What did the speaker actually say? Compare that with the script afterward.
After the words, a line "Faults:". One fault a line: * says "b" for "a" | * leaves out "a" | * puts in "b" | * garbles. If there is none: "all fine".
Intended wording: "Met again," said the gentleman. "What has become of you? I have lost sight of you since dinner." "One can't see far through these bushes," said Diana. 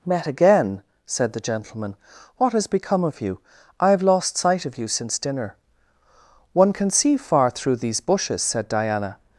"Met again," said the gentleman. "What has become of you? I have lost sight of you since dinner." "One can see far through these bushes," said Diana.
Faults:
* says "can" for "can't"